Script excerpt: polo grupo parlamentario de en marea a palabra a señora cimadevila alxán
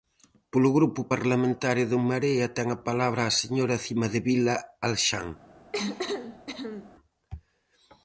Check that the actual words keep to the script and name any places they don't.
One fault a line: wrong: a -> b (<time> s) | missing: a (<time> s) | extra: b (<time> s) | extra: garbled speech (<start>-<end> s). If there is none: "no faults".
extra: ten (2.6 s)